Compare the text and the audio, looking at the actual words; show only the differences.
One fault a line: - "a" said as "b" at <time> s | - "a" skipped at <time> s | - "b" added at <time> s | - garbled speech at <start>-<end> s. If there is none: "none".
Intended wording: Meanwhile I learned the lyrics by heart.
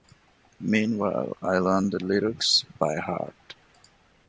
none